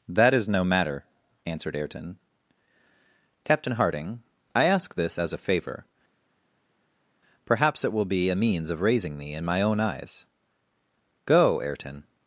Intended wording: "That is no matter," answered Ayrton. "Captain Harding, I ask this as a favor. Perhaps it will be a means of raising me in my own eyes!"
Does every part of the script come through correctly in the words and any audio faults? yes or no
no